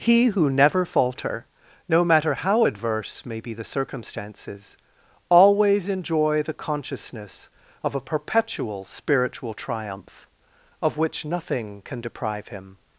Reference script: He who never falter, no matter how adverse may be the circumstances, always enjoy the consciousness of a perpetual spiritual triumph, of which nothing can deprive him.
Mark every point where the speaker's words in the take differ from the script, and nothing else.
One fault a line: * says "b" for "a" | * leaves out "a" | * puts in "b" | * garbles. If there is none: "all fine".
all fine